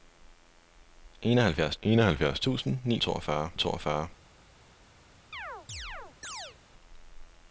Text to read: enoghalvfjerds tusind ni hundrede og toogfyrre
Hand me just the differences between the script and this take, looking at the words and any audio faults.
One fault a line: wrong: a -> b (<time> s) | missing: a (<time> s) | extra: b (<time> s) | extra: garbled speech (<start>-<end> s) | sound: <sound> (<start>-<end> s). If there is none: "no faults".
extra: enoghalvfjerds (1.8 s)
wrong: hundrede -> toogfyrre (3.0 s)
sound: chirp (5.3-6.6 s)